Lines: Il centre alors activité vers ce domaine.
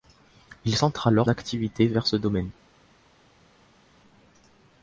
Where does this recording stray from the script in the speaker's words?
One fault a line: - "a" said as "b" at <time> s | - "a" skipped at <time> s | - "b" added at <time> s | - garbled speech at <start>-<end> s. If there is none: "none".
none